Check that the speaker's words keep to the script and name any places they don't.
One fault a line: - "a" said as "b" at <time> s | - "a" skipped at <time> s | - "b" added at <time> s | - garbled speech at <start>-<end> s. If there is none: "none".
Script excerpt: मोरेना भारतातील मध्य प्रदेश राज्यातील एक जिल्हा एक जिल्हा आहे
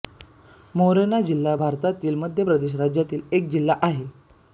- "जिल्हा" added at 1.2 s
- "एक जिल्हा" skipped at 3.8 s